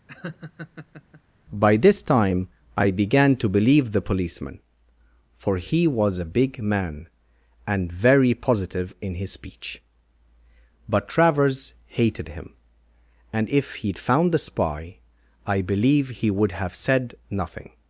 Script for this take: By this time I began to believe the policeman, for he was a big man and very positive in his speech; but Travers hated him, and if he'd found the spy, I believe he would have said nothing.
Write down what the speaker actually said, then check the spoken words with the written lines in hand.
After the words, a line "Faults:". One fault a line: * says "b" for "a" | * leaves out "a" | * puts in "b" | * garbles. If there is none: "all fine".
By this time I began to believe the policeman, for he was a big man and very positive in his speech; but Travers hated him, and if he'd found the spy, I believe he would have said nothing.
Faults:
all fine